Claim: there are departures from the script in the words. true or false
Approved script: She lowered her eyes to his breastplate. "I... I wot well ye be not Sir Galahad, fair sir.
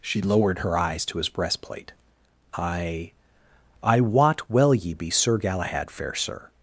true